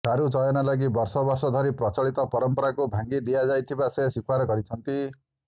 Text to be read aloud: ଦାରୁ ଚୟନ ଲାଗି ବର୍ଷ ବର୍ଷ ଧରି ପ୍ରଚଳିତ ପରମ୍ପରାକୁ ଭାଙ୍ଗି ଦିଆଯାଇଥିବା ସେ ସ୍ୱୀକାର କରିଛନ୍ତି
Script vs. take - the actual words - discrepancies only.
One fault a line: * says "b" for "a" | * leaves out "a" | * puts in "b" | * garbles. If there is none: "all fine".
all fine